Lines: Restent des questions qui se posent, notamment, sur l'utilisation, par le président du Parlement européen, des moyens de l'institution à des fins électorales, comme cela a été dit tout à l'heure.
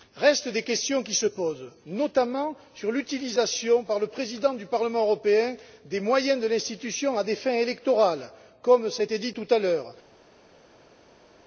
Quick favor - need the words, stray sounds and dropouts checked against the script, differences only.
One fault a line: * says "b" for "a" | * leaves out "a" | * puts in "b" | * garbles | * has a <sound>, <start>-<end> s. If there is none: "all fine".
all fine